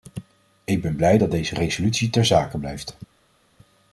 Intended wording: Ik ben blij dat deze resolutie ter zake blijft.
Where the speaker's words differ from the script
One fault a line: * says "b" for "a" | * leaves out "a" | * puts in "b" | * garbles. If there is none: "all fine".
all fine